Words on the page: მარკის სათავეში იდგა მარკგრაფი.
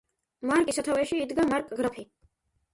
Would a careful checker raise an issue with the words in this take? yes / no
no